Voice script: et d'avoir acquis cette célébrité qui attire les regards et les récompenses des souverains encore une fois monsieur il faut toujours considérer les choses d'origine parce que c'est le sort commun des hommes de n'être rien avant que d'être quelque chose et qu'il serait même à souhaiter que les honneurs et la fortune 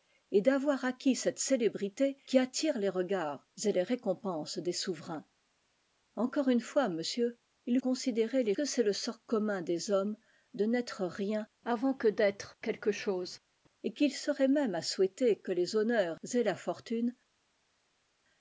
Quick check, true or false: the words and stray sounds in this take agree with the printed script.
false